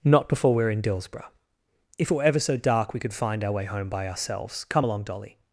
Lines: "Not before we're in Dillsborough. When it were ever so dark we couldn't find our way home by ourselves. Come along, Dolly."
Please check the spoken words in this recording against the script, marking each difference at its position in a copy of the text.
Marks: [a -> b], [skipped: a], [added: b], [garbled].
"Not before we're in Dillsborough. [When -> If] it were ever so dark we [couldn't -> could] find our way home by ourselves. Come along, Dolly."